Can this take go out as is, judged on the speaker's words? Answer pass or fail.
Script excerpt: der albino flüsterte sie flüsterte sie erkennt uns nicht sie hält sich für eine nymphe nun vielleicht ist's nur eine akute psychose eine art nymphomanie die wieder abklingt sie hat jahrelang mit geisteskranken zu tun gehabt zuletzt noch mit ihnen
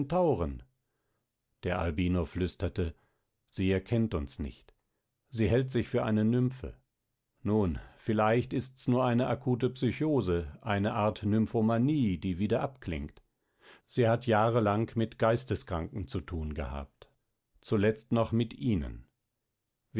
fail